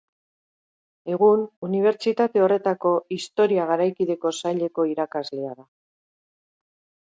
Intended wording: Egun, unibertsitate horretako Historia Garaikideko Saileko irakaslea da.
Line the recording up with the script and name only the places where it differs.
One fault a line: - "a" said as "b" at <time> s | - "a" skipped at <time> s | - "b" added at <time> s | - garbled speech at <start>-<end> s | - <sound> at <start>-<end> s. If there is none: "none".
none